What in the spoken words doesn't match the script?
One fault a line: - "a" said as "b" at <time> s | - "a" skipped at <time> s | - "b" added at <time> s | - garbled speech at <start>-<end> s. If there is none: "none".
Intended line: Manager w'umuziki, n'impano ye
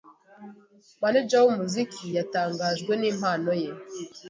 - "yatangajwe" added at 2.2 s